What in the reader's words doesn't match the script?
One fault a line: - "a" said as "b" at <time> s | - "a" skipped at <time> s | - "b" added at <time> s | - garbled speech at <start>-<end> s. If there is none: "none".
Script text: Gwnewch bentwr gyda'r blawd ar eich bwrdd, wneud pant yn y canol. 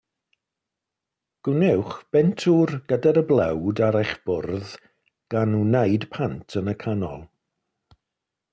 - "gan" added at 5.3 s